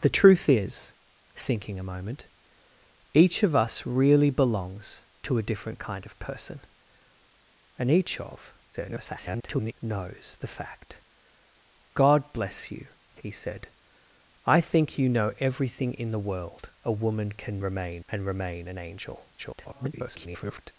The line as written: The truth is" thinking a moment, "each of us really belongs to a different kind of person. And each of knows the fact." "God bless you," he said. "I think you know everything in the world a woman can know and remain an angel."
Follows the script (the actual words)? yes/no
no